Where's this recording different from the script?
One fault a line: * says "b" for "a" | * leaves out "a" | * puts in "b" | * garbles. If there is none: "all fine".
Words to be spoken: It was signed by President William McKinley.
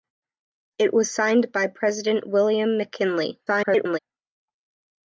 * garbles